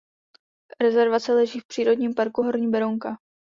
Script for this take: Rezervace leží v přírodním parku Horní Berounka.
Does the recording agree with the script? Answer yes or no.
yes